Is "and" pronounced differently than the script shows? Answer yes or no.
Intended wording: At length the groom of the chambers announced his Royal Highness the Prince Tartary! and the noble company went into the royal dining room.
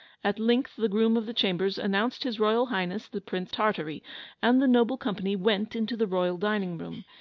no